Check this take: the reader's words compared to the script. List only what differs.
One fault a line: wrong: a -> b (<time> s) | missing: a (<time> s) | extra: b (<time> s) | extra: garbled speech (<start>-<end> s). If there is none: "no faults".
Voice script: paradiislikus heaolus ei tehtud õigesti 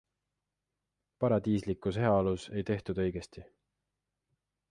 no faults